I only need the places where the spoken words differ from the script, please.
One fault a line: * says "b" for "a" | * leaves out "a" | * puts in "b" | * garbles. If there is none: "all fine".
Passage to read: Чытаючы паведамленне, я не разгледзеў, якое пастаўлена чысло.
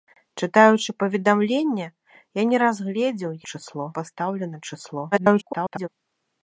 * says "чысло" for "якое"
* garbles